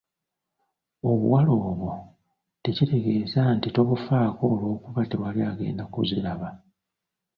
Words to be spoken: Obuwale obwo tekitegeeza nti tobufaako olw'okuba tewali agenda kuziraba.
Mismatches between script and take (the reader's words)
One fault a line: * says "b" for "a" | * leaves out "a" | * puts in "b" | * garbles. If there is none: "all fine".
all fine